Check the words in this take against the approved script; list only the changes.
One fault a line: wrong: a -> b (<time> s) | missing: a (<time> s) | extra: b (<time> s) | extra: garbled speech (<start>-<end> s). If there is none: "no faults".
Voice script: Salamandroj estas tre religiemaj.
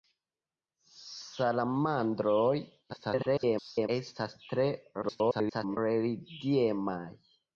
extra: garbled speech (2.9-3.9 s)
extra: garbled speech (5.0-5.8 s)